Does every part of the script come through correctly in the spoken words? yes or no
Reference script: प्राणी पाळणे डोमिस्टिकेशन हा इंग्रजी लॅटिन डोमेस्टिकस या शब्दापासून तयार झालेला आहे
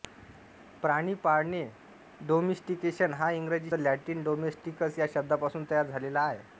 yes